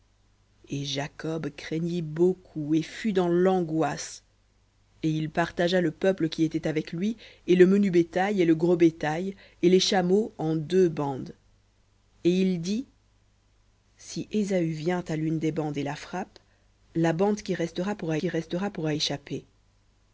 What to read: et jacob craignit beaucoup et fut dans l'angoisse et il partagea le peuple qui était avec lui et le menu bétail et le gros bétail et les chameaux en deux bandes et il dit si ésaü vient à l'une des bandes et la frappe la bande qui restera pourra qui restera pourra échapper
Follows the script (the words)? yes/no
yes